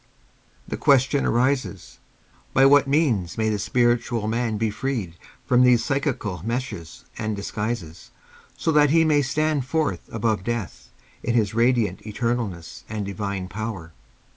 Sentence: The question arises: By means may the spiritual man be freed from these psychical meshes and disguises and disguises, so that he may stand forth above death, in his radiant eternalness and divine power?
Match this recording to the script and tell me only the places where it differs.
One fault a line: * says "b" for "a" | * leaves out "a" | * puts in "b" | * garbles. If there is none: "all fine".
* puts in "what"
* leaves out "and disguises"